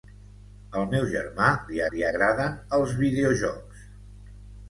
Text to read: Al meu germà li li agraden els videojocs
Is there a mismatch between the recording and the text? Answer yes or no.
no